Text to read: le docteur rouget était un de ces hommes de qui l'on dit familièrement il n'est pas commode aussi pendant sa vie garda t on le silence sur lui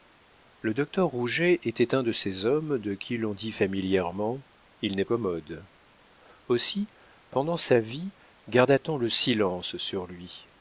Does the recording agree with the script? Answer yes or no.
no